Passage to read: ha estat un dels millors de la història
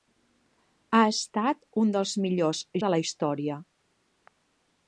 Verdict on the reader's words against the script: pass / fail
pass